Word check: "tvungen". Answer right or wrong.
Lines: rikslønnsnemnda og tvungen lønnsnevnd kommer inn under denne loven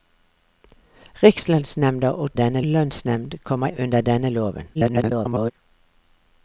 wrong